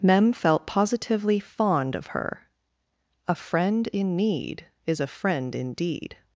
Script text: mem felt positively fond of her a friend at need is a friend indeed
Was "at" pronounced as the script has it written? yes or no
no